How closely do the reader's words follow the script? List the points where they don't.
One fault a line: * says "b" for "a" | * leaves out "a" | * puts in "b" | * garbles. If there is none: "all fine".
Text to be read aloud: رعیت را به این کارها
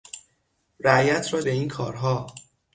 all fine